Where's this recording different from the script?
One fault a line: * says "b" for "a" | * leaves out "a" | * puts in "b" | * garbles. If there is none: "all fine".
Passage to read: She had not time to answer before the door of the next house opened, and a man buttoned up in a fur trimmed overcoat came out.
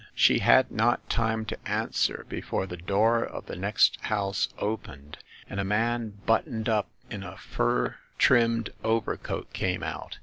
all fine